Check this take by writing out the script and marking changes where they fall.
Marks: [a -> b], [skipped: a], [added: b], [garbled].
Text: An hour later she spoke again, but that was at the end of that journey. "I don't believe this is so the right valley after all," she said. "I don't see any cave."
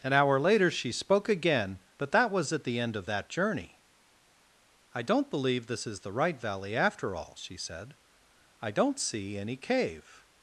An hour later she spoke again, but that was at the end of that journey. "I don't believe this is [skipped: so] the right valley after all," she said. "I don't see any cave."